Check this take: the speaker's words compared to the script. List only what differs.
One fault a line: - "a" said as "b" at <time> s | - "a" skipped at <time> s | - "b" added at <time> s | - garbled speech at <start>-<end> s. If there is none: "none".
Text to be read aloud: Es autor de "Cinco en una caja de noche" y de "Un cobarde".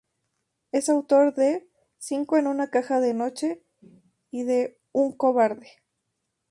none